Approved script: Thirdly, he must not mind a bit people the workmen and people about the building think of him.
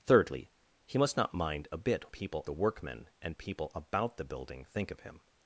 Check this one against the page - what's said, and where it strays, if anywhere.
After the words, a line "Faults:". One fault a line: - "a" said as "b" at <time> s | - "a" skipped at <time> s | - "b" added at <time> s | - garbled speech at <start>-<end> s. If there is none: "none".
Thirdly, he must not mind a bit people the workmen and people about the building think of him.
Faults:
none